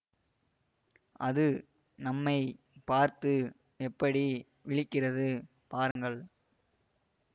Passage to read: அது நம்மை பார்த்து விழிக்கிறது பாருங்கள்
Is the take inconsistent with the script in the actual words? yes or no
yes